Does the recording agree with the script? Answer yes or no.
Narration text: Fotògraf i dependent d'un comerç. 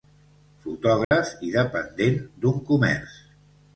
yes